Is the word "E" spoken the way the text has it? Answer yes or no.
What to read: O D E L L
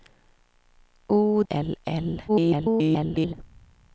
no